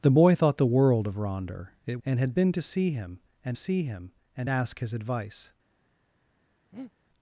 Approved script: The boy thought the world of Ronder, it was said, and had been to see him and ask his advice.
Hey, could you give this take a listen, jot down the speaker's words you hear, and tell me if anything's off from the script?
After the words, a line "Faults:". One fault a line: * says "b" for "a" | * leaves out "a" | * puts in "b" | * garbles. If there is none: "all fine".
The boy thought the world of Ronder, it and had been to see him and see him and ask his advice.
Faults:
* leaves out "was said"
* puts in "see him and"